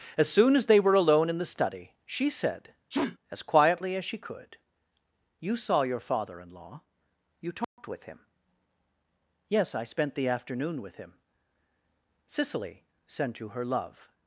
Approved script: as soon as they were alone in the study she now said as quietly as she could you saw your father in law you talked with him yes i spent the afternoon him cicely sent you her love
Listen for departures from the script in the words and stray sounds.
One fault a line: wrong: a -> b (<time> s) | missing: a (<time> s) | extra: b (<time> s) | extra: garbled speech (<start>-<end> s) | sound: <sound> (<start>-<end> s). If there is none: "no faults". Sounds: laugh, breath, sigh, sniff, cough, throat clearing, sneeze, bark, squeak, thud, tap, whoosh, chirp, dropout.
missing: now (2.3 s)
sound: sneeze (2.9-3.2 s)
sound: dropout (7.6-7.8 s)
extra: with (10.8 s)